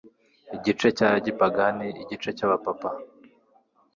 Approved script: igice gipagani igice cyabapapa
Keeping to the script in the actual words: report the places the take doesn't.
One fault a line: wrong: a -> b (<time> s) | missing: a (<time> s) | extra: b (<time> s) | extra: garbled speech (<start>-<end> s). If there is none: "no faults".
extra: cya (1.0 s)